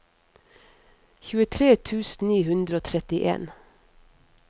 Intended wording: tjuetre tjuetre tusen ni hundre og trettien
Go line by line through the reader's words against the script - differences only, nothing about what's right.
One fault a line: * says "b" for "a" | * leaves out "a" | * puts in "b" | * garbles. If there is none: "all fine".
* leaves out "tjuetre"